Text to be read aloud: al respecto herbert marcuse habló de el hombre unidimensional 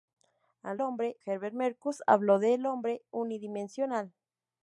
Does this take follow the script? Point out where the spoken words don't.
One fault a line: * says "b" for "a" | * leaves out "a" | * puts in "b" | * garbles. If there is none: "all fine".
* says "hombre" for "respecto"